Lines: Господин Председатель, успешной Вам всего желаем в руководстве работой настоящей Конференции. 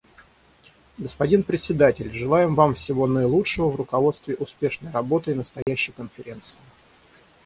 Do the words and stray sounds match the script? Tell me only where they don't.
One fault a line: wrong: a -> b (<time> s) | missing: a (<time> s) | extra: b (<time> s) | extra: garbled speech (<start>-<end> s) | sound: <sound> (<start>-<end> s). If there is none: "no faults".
wrong: успешной -> желаем (2.1 s)
wrong: желаем -> наилучшего (3.1 s)
extra: успешной (4.3 s)
sound: dropout (5.6-5.7 s)